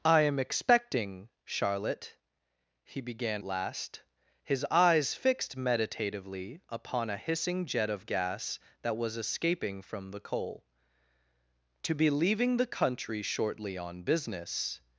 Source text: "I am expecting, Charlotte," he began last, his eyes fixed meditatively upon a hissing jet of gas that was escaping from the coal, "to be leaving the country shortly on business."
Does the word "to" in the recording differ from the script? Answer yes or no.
no